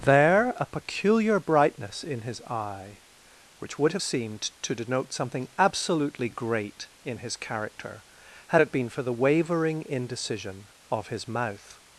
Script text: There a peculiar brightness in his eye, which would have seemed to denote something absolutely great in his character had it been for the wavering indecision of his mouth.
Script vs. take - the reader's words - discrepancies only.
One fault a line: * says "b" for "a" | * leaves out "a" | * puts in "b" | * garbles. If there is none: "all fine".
all fine